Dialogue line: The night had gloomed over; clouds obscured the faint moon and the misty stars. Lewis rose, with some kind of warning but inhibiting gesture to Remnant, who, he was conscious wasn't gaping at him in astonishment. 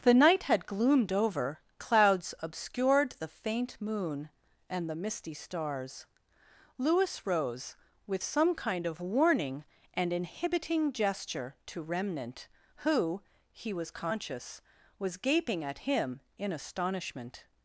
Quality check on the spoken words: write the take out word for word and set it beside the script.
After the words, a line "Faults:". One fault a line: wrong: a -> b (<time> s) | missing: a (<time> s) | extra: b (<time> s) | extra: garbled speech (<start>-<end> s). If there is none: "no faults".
The night had gloomed over; clouds obscured the faint moon and the misty stars. Lewis rose, with some kind of warning and inhibiting gesture to Remnant, who, he was conscious was gaping at him in astonishment.
Faults:
wrong: but -> and (10.0 s)
wrong: wasn't -> was (15.0 s)